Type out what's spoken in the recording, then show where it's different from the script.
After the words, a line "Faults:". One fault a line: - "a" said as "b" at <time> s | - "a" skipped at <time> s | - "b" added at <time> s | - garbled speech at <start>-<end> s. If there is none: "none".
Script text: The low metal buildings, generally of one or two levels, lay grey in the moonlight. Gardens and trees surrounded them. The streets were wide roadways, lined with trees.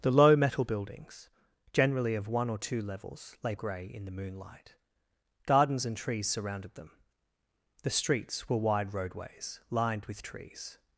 The low metal buildings, generally of one or two levels, lay grey in the moonlight. Gardens and trees surrounded them. The streets were wide roadways, lined with trees.
Faults:
none